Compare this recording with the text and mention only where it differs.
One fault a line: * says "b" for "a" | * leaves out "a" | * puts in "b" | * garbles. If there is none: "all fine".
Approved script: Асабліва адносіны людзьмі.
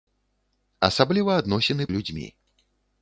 all fine